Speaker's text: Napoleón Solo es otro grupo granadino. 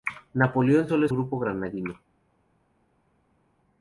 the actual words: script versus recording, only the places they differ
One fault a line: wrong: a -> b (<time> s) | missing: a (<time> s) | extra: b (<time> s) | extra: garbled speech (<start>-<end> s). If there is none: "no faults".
missing: otro (1.1 s)